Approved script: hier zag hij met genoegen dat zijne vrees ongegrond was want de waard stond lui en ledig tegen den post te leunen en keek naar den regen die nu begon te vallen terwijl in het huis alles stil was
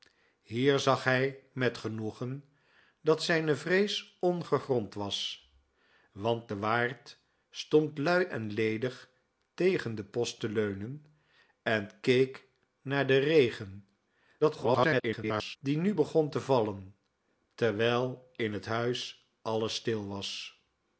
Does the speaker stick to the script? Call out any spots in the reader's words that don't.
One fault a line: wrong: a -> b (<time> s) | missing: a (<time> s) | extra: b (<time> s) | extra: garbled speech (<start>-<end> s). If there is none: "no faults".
extra: garbled speech (14.4-15.6 s)